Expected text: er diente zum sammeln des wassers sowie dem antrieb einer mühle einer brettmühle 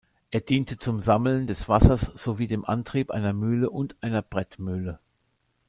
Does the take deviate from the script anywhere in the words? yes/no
yes